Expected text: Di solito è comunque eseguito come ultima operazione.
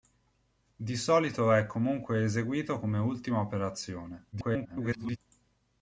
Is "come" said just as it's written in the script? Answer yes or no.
yes